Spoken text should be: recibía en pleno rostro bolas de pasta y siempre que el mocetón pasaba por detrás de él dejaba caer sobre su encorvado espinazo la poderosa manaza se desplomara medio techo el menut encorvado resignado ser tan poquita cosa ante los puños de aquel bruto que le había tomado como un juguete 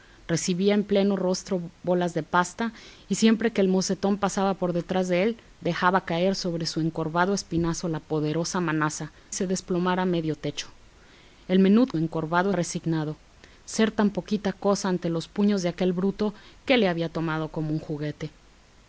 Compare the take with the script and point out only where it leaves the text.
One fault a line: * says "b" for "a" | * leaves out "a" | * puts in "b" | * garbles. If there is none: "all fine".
all fine